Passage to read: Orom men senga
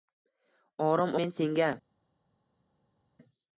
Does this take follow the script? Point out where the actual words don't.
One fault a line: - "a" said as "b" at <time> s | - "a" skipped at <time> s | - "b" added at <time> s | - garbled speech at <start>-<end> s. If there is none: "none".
none